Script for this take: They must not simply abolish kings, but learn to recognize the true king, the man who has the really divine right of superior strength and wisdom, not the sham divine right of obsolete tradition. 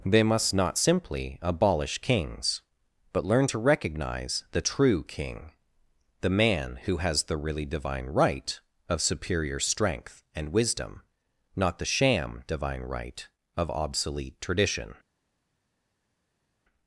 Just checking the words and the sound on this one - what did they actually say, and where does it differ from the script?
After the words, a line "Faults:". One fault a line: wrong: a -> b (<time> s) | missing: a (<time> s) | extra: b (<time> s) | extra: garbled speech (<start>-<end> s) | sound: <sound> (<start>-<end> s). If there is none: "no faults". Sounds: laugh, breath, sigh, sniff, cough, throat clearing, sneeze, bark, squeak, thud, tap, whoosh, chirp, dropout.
They must not simply abolish kings, but learn to recognize the true king, the man who has the really divine right of superior strength and wisdom, not the sham divine right of obsolete tradition.
Faults:
no faults